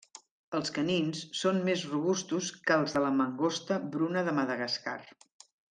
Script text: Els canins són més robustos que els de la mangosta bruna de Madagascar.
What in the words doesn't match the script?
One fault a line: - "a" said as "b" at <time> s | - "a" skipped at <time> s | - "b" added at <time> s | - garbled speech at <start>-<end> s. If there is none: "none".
none